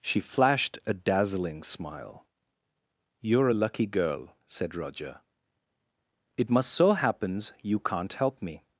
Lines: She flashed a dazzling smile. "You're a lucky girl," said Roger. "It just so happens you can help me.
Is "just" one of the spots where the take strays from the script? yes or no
yes